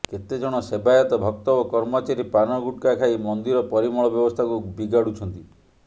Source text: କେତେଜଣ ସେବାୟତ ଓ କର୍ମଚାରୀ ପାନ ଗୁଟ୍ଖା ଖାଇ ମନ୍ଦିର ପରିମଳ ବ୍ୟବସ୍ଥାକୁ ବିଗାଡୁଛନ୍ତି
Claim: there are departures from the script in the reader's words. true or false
true